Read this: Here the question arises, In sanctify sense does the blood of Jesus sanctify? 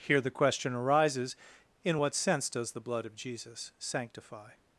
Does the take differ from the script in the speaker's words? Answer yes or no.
yes